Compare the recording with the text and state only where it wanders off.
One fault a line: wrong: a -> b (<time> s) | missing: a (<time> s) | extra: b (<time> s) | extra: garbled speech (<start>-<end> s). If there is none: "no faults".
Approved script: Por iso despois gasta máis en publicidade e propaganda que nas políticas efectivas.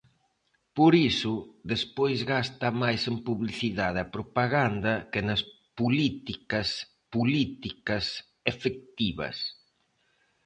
extra: políticas (7.1 s)